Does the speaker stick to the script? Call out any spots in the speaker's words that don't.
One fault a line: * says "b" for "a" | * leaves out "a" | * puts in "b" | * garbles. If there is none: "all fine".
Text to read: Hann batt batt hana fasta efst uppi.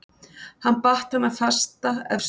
* leaves out "batt"